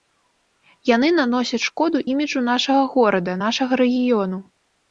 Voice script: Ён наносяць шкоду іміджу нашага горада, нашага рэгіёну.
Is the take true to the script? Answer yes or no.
no